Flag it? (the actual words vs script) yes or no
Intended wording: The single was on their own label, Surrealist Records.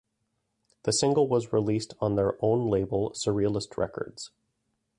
yes